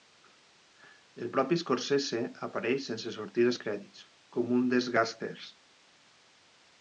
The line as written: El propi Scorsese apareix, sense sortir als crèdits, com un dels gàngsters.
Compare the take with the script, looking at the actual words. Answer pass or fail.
pass